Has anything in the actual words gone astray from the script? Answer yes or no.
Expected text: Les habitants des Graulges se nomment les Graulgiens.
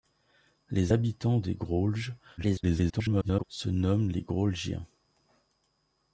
yes